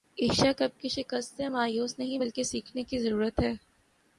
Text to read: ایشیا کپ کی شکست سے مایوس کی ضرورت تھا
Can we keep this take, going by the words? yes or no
no